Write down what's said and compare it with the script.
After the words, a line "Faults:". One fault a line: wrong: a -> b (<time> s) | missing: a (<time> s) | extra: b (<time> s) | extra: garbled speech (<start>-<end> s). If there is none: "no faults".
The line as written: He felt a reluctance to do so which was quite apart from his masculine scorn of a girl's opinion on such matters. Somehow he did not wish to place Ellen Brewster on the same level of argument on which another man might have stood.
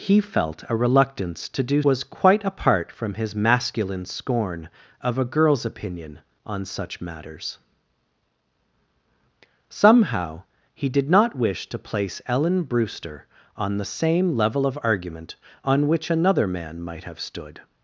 He felt a reluctance to do was quite apart from his masculine scorn of a girl's opinion on such matters. Somehow he did not wish to place Ellen Brewster on the same level of argument on which another man might have stood.
Faults:
missing: so which (1.8 s)